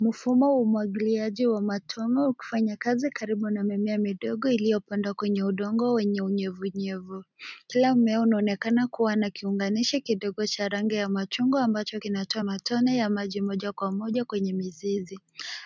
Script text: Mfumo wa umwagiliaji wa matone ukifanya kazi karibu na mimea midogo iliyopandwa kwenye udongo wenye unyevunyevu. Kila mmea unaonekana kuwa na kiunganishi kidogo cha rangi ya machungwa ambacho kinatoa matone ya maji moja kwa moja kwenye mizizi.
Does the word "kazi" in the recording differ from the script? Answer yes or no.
no